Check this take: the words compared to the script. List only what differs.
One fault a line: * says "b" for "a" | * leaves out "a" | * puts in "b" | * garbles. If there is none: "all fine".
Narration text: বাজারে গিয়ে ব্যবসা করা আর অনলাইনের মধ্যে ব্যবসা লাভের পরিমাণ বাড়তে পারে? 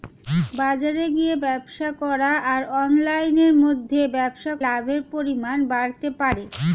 all fine